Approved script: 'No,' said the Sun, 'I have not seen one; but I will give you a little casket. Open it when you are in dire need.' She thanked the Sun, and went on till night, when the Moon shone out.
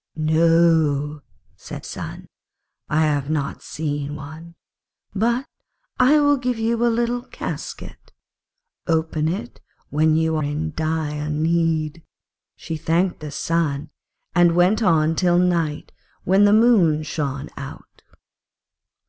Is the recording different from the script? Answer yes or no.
yes